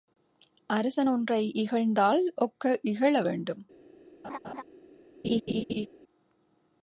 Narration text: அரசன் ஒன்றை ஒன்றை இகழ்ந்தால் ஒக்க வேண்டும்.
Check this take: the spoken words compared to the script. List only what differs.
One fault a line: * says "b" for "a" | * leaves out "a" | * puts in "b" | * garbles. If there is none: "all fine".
* leaves out "ஒன்றை"
* puts in "இகழ"